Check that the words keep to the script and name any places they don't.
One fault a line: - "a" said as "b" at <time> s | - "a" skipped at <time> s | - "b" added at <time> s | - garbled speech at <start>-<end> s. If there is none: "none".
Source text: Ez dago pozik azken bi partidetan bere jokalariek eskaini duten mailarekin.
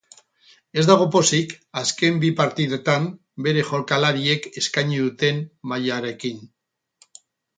none